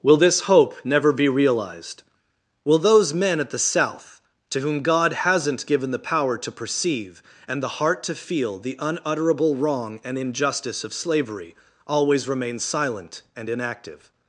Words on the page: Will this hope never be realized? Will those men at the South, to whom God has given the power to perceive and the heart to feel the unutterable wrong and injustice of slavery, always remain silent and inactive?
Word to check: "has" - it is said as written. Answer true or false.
false